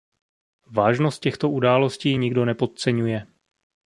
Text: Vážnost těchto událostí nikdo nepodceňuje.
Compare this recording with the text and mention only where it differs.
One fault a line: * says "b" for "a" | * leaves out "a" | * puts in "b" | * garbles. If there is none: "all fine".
all fine